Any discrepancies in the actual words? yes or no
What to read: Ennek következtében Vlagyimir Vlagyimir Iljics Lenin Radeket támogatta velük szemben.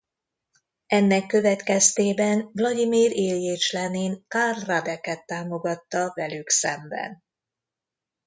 yes